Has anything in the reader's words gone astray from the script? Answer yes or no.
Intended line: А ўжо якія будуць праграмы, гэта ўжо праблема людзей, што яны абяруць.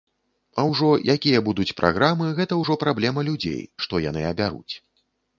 no